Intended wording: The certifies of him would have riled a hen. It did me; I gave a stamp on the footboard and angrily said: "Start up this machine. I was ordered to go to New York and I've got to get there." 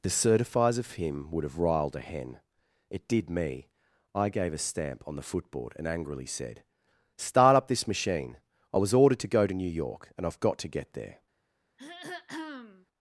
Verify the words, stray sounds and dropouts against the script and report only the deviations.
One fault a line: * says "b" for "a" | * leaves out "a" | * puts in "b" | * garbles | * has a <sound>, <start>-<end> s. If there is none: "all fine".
* has a throat clearing, 11.8-12.9 s